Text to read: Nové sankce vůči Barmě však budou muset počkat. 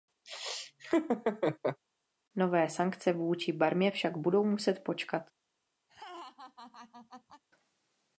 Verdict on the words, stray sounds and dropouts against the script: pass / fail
fail